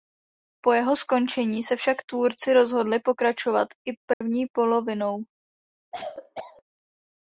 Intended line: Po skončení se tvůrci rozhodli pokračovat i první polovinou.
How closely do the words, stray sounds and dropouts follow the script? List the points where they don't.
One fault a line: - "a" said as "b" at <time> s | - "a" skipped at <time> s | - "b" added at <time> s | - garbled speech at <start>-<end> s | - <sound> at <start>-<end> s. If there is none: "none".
- "jeho" added at 0.7 s
- "však" added at 1.8 s
- dropout at 4.1-4.2 s
- cough at 5.9-6.6 s